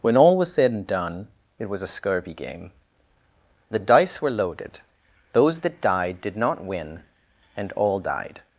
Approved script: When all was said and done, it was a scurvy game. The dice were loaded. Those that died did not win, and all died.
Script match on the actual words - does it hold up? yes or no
yes